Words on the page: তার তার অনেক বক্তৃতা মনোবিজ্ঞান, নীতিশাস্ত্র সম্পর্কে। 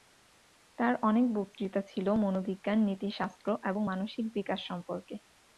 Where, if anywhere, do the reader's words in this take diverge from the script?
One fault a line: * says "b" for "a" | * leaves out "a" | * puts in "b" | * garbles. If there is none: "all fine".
* leaves out "তার"
* puts in "ছিল"
* puts in "এবং মানসিক বিকাশ"